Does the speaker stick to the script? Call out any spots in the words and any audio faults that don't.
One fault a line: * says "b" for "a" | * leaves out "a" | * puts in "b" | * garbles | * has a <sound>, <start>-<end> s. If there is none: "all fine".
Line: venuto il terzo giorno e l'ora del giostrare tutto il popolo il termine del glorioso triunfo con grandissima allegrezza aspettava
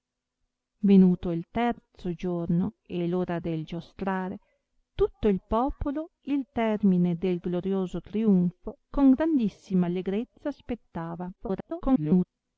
* garbles